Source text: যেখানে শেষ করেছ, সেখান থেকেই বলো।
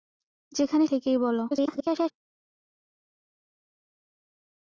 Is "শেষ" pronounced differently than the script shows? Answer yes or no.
yes